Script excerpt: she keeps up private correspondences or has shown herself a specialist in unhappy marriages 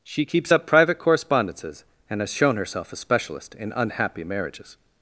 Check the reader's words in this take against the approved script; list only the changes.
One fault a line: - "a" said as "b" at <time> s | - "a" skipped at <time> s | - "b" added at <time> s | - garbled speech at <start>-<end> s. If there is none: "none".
- "or" said as "and" at 2.1 s